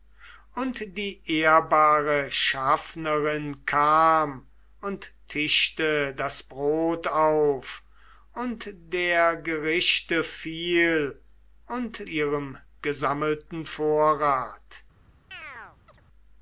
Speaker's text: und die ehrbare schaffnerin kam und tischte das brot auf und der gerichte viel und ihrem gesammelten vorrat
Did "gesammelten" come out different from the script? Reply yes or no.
no